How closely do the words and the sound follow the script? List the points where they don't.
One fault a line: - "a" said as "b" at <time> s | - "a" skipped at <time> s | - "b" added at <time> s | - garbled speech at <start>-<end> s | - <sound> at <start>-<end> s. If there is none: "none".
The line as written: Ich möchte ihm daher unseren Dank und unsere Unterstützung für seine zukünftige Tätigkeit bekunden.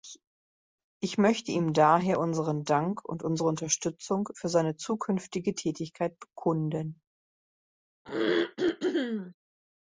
- throat clearing at 8.1-9.4 s